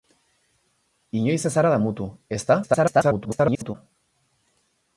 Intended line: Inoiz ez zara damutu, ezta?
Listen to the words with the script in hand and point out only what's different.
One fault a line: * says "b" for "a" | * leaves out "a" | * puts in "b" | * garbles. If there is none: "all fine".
* garbles